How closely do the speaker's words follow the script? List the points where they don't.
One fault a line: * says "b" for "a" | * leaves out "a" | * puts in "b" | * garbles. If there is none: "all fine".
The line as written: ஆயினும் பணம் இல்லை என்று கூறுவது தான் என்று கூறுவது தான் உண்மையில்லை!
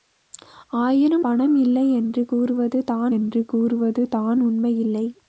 all fine